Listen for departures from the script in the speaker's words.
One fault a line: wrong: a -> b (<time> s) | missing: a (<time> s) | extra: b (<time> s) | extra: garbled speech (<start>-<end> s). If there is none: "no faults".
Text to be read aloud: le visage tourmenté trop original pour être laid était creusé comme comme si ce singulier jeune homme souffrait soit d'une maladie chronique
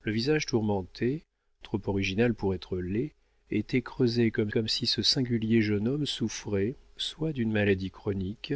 no faults